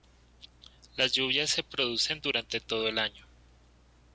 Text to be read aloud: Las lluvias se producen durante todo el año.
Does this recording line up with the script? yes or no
yes